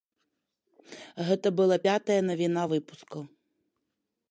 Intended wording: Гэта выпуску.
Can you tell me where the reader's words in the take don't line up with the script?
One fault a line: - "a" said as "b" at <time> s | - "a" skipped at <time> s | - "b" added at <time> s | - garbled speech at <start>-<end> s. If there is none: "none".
- "была пятая навіна" added at 1.6 s